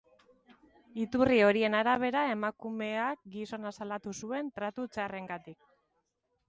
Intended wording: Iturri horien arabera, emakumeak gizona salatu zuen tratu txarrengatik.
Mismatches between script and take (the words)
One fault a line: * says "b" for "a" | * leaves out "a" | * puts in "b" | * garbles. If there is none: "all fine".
all fine